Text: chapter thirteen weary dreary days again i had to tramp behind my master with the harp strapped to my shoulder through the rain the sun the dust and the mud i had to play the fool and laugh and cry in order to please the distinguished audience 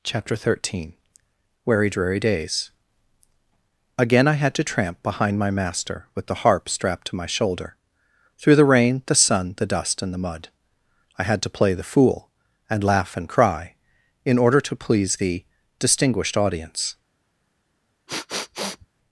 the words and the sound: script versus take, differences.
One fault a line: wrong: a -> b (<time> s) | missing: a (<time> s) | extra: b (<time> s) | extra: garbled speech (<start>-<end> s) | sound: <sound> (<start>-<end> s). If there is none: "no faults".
sound: sniff (18.1-18.9 s)